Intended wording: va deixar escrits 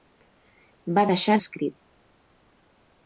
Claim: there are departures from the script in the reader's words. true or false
false